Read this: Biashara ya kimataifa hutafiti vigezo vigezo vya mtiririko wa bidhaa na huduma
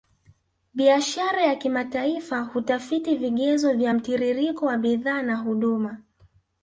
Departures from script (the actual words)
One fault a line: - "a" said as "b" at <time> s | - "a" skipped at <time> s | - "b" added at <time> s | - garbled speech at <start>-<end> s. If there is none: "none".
- "vigezo" skipped at 3.7 s